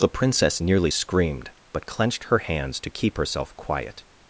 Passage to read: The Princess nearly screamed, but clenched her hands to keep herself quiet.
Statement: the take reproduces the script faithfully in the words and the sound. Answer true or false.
true